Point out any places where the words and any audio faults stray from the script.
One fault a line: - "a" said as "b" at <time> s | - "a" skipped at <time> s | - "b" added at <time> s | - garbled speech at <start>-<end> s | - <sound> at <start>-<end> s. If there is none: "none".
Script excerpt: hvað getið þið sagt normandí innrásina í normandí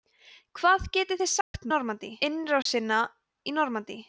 - dropout at 1.4-1.5 s
- dropout at 2.6-2.7 s